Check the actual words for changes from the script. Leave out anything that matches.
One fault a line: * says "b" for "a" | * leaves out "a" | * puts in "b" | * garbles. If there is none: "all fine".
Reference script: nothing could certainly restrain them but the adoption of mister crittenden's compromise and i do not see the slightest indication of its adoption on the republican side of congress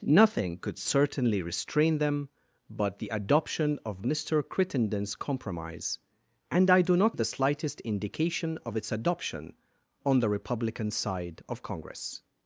* leaves out "see"